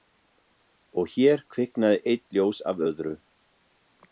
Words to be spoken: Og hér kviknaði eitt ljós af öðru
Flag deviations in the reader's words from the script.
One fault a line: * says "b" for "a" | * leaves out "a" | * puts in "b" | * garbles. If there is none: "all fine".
all fine